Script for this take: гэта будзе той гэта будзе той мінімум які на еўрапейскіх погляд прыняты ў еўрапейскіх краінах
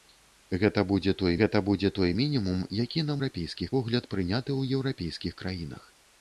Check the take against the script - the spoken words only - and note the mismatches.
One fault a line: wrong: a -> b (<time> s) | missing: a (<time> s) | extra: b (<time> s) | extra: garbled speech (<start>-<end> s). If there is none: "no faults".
no faults